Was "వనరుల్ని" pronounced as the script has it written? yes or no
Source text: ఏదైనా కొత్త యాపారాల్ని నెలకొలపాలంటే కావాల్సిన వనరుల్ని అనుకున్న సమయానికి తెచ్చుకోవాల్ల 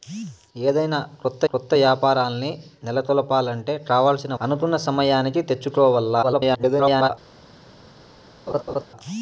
no